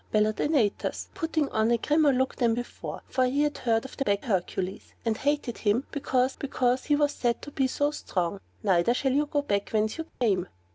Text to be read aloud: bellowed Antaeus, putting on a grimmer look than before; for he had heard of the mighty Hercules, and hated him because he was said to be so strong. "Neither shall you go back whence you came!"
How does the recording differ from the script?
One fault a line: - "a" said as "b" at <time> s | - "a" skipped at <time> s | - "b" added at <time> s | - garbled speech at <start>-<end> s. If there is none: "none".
- "mighty" said as "back" at 4.0 s
- "because" added at 6.4 s